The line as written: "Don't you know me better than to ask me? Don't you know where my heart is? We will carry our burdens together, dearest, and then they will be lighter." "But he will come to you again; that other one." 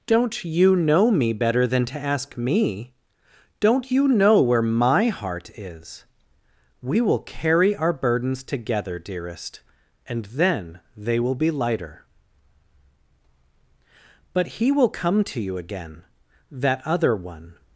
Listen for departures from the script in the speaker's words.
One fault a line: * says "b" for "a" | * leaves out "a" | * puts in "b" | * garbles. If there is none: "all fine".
all fine